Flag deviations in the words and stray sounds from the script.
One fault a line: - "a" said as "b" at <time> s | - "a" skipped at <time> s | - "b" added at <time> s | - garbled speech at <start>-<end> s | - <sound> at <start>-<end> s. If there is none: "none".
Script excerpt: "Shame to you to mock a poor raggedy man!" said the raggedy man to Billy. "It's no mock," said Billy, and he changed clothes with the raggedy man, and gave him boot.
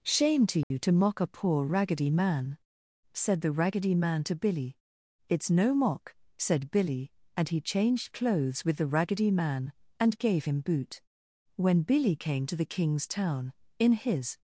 - dropout at 0.6-0.7 s
- "When Billy came to the king's town in his" added at 11.6 s